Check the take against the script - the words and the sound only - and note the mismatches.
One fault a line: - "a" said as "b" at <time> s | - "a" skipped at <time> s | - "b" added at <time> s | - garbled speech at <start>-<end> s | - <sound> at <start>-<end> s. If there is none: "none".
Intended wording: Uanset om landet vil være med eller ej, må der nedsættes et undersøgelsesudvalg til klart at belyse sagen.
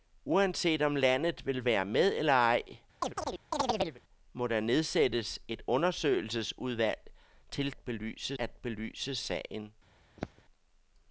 - chirp at 3.0-4.0 s
- "klart" said as "belyse" at 7.7 s
- throat clearing at 10.2-10.4 s